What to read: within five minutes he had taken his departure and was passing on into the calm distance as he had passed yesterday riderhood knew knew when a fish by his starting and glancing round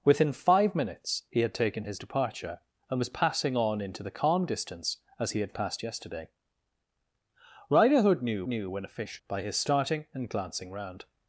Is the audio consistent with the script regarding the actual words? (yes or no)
yes